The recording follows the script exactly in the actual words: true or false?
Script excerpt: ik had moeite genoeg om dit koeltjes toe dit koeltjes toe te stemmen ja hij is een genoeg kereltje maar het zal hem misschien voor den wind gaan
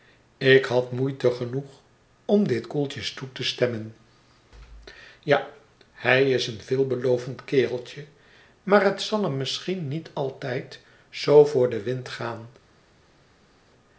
false